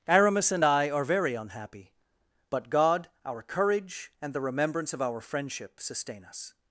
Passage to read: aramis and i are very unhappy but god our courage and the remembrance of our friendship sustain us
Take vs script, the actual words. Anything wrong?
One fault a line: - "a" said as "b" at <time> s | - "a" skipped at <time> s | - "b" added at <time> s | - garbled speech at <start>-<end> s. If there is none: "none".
none